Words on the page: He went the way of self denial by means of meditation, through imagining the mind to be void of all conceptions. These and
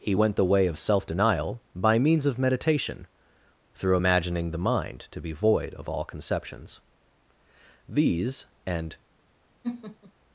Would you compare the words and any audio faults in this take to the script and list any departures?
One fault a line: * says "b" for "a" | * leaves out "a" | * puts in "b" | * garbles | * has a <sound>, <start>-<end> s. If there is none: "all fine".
* has a laugh, 9.6-10.1 s